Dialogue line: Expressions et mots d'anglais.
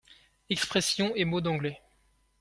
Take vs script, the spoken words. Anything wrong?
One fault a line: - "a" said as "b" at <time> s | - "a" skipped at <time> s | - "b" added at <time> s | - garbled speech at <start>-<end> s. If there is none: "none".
none